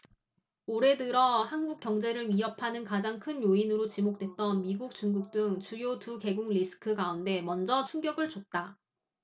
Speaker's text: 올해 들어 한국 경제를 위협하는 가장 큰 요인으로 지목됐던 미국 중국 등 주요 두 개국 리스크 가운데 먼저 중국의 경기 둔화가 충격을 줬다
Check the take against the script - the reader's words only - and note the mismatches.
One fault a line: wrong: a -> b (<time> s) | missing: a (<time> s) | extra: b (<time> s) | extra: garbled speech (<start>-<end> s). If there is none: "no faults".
missing: 중국의 경기 둔화가 (7.8 s)